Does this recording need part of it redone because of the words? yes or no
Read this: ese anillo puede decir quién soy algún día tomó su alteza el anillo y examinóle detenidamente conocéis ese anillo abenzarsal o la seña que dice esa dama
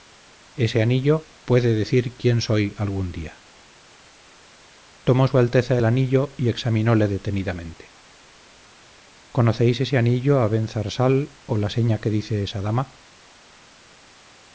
no